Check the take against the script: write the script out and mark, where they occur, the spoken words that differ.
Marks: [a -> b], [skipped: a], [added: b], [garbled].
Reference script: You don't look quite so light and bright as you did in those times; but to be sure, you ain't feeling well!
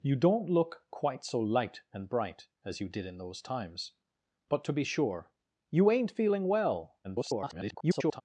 You don't look quite so light and bright as you did in those times; but to be sure, you ain't feeling well! [garbled]